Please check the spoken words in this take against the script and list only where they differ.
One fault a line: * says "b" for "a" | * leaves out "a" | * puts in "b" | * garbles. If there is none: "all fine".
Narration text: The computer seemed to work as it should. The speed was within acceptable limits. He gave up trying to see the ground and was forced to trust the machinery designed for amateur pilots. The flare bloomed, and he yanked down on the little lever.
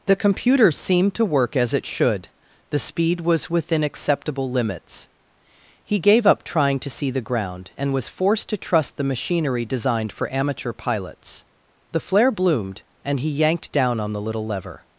all fine